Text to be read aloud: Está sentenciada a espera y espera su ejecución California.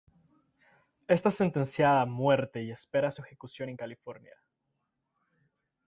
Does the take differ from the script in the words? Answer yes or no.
yes